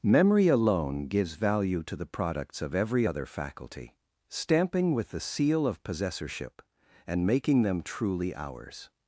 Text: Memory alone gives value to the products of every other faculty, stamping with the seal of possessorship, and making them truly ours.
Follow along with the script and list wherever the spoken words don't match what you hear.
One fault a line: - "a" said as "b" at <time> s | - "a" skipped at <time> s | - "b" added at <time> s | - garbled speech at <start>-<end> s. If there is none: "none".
none